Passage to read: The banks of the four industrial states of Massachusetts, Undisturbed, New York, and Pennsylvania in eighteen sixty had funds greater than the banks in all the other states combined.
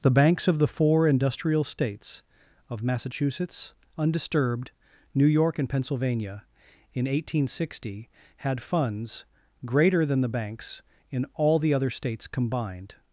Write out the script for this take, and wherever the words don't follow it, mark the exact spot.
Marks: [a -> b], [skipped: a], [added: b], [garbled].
The banks of the four industrial states of Massachusetts, Undisturbed, New York, and Pennsylvania in eighteen sixty had funds greater than the banks in all the other states combined.